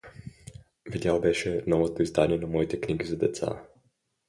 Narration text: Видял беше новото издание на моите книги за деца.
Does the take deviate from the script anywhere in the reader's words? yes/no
no